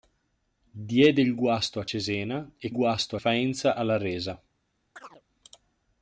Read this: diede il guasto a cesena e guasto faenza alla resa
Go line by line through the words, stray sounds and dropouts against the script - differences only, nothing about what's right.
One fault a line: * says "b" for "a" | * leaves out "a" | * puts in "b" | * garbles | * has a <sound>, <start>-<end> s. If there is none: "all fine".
* has a chirp, 5.0-5.2 s